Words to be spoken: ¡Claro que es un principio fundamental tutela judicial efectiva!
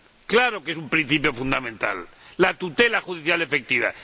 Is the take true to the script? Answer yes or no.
no